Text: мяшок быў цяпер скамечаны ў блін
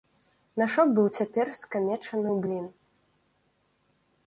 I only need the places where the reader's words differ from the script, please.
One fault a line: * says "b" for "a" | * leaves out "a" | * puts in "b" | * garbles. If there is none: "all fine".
all fine